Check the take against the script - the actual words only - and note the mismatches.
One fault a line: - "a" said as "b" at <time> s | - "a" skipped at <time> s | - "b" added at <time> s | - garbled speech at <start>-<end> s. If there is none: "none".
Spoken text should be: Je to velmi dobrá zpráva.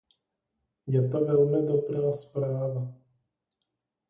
none